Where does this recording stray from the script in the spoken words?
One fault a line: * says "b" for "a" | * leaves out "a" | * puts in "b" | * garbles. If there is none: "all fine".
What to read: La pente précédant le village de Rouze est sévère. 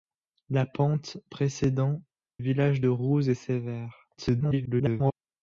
* leaves out "le"
* garbles